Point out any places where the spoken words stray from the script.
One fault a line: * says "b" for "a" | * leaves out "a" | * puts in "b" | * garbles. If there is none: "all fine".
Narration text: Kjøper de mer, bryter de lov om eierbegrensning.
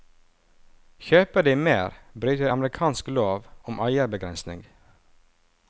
* puts in "amerikansk"